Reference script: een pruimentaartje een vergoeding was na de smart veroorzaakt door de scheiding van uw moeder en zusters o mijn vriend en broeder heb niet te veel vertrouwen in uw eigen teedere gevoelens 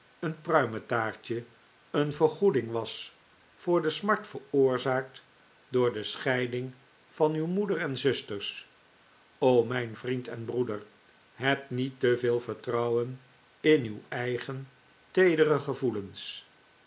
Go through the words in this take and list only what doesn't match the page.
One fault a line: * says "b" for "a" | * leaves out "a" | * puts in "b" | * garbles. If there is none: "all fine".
* says "voor" for "na"